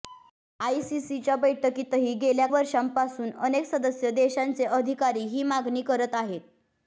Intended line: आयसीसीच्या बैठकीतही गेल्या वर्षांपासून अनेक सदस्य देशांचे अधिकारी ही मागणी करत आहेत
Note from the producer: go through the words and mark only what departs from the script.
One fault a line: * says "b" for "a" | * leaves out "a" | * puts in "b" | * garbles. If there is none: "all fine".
all fine